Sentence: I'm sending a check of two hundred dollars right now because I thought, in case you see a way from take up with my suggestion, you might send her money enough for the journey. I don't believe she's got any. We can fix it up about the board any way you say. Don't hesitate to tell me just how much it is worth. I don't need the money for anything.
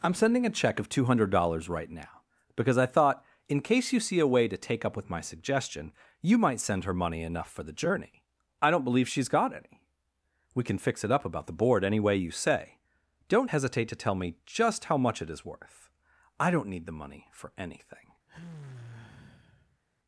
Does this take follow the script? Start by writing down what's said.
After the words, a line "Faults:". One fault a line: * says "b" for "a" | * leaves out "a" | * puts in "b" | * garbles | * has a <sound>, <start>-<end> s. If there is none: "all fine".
I'm sending a check of two hundred dollars right now because I thought, in case you see a way to take up with my suggestion, you might send her money enough for the journey. I don't believe she's got any. We can fix it up about the board any way you say. Don't hesitate to tell me just how much it is worth. I don't need the money for anything.
Faults:
* says "to" for "from"
* has a sigh, 18.3-19.8 s